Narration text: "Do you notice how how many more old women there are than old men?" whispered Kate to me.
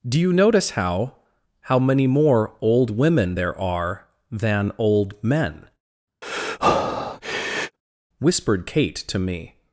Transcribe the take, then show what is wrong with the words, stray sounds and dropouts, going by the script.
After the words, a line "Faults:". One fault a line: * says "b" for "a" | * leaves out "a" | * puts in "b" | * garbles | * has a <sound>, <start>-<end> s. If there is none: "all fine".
"Do you notice how how many more old women there are than old men?" whispered Kate to me.
Faults:
* has a breath, 6.2-7.8 s